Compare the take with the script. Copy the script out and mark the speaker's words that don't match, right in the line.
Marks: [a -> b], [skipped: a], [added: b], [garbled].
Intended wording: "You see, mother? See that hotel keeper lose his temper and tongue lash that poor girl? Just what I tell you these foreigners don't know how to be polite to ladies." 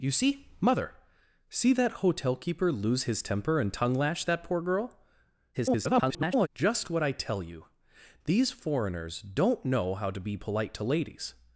"You see, mother? See that hotel keeper lose his temper and tongue lash that poor girl? [garbled] Just what I tell you these foreigners don't know how to be polite to ladies."